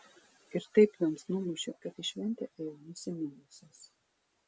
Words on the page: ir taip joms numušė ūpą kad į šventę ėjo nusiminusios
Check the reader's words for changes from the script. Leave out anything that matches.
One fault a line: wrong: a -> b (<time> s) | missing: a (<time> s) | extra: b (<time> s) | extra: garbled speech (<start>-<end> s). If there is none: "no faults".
missing: ūpą (1.7 s)